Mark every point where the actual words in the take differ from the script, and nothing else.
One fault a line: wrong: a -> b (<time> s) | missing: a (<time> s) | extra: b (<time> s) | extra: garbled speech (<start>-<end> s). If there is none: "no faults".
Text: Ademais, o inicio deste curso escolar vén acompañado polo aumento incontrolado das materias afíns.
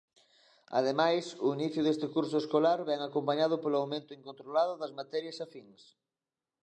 no faults